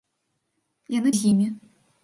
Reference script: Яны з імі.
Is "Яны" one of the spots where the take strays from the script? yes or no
no